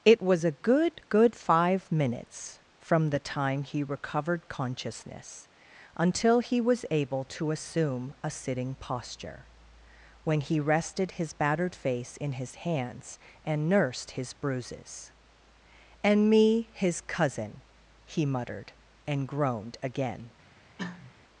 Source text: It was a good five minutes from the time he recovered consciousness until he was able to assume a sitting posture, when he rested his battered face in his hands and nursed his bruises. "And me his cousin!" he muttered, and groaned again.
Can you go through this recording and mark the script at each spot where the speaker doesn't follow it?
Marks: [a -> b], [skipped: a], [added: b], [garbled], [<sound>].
It was a good [added: good] five minutes from the time he recovered consciousness until he was able to assume a sitting posture, when he rested his battered face in his hands and nursed his bruises. "And me his cousin!" he muttered, and groaned again. [cough]